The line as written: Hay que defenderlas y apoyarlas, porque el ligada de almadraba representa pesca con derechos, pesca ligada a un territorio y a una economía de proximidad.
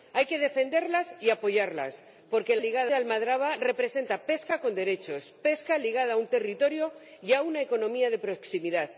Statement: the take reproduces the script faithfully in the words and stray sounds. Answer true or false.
true